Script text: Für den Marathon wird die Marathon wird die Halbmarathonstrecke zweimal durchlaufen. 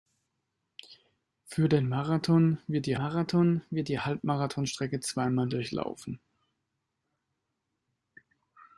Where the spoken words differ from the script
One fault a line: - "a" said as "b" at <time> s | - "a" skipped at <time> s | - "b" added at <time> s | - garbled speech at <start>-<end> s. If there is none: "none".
none